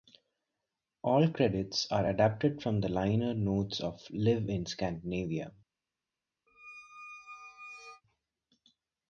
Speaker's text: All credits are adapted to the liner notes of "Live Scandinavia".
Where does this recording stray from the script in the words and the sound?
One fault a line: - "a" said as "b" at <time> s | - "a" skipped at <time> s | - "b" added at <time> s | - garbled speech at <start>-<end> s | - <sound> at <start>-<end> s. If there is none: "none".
- "to" said as "from" at 2.6 s
- "in" added at 4.5 s
- squeak at 6.5-8.0 s